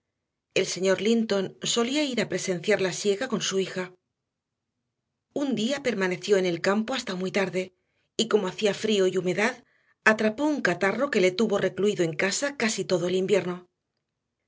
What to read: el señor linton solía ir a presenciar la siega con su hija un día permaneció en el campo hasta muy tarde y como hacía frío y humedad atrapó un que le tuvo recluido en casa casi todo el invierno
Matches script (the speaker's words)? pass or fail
fail